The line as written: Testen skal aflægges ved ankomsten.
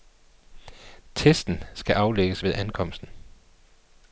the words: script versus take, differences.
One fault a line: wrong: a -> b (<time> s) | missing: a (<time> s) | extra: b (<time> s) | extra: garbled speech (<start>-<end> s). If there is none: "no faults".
no faults